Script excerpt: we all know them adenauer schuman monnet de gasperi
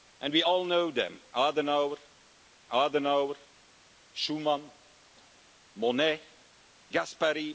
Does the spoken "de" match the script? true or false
false